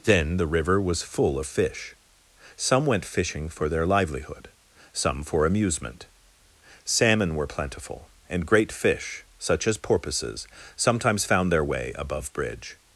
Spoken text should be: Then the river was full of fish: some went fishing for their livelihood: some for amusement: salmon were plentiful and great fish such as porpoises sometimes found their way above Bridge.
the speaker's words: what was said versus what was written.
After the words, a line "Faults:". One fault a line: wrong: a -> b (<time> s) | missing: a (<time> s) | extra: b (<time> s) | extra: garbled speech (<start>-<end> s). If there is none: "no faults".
Then the river was full of fish: some went fishing for their livelihood: some for amusement: salmon were plentiful and great fish such as porpoises sometimes found their way above Bridge.
Faults:
no faults